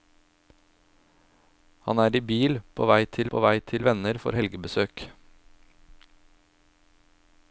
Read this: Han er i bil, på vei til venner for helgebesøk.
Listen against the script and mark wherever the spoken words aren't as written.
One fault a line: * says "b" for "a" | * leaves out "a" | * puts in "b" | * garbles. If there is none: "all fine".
* puts in "på vei til"